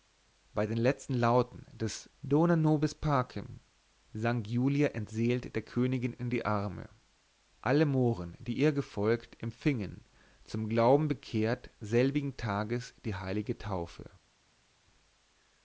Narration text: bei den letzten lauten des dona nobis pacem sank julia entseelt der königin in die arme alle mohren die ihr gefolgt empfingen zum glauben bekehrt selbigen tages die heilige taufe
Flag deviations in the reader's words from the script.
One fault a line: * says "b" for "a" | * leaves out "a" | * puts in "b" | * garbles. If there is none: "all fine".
all fine